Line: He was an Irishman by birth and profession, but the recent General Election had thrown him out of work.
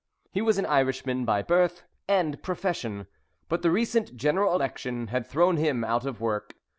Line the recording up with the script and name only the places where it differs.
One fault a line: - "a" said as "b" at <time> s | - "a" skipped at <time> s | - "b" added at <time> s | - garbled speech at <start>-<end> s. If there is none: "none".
none